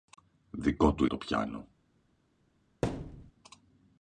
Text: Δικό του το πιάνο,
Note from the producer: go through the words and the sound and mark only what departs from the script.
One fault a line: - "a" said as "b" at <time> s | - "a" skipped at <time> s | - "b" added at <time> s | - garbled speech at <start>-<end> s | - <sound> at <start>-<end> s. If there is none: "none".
- thud at 2.8-3.3 s